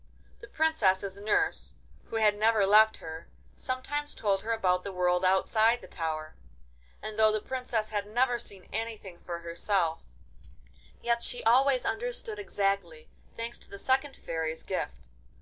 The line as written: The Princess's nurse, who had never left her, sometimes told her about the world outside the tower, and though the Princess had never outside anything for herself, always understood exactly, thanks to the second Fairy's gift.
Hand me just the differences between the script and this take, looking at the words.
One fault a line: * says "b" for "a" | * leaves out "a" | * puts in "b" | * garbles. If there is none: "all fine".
* says "seen" for "outside"
* puts in "yet she"